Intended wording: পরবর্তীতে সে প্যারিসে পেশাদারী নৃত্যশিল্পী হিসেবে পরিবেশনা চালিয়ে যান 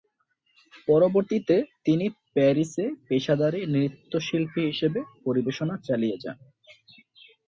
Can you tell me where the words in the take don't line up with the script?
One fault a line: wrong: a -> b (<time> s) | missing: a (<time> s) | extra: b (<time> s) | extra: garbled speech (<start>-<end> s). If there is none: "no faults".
wrong: সে -> তিনি (1.9 s)